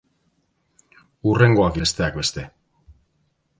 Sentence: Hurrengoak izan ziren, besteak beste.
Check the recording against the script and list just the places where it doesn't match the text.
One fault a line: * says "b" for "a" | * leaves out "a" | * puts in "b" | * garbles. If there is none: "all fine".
* leaves out "izan ziren"